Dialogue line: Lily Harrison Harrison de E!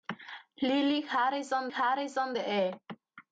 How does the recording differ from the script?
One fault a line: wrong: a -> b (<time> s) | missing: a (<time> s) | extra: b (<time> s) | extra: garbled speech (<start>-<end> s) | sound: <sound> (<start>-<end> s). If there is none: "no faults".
no faults